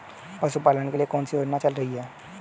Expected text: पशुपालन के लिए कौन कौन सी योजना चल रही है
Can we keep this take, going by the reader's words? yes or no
no